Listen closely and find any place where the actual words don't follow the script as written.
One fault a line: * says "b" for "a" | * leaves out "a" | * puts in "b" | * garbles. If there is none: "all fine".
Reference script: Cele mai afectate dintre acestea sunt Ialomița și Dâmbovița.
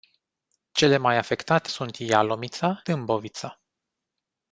* leaves out "dintre acestea"
* leaves out "și"